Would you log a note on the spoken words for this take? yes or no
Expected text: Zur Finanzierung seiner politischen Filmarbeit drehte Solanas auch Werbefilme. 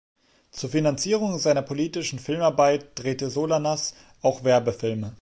no